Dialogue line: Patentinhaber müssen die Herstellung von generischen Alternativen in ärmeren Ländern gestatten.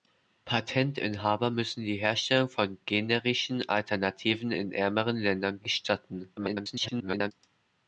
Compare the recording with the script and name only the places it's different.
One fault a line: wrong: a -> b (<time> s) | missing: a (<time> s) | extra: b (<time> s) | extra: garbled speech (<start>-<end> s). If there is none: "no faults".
extra: garbled speech (6.4-7.3 s)